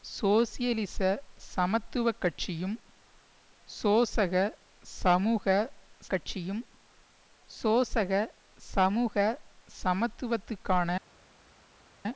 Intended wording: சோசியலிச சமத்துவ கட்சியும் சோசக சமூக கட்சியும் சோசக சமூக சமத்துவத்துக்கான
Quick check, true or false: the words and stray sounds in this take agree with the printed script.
true